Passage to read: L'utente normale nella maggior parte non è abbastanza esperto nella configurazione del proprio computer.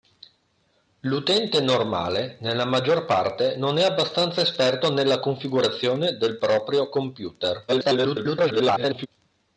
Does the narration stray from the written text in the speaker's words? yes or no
yes